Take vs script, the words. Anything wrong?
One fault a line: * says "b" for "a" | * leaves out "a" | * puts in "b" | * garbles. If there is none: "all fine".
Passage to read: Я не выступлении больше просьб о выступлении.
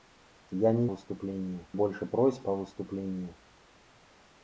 all fine